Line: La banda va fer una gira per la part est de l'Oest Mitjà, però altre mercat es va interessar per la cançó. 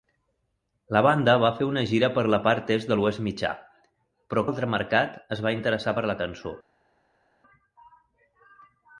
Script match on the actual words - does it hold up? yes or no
yes